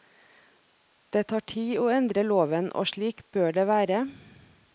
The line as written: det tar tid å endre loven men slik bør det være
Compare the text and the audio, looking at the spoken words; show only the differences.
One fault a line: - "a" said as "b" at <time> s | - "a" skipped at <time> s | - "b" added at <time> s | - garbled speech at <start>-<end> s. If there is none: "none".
- "men" said as "og" at 2.7 s